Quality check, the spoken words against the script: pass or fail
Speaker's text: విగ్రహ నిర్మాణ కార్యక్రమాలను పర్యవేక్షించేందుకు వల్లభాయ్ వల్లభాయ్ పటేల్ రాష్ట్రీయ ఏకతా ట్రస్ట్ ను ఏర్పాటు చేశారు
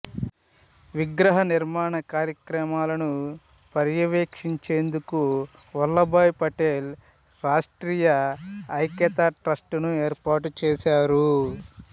fail